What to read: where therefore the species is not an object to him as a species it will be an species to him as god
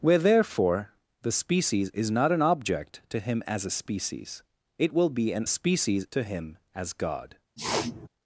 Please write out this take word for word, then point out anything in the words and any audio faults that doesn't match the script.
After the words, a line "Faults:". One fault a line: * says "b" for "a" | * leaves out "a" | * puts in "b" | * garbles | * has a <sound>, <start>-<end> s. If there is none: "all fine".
where therefore the species is not an object to him as a species it will be an species to him as god
Faults:
* has a sniff, 7.6-8.1 s